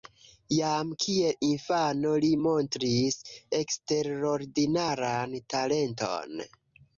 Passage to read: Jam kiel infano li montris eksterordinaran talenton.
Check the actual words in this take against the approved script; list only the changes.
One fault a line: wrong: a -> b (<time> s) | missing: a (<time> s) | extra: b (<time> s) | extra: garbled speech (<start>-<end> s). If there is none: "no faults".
no faults